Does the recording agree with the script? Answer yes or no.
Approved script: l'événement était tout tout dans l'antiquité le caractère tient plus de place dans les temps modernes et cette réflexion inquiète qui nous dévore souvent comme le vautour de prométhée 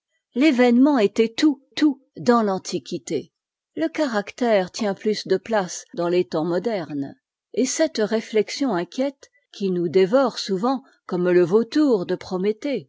yes